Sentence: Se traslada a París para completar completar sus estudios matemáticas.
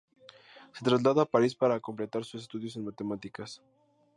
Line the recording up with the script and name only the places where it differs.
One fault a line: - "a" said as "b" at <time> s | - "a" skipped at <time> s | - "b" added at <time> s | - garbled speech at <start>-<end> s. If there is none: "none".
- "completar" skipped at 2.2 s
- "en" added at 2.8 s